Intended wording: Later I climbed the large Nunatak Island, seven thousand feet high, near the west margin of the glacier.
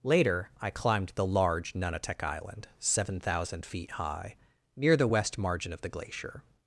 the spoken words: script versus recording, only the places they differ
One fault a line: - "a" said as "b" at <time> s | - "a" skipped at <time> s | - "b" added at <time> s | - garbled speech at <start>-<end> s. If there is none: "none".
none